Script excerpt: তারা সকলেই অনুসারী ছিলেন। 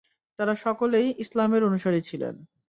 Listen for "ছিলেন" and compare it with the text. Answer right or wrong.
right